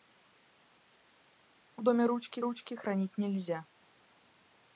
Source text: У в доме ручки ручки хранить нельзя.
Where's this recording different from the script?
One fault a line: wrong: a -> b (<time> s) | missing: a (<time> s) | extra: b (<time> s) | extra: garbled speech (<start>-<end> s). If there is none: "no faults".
no faults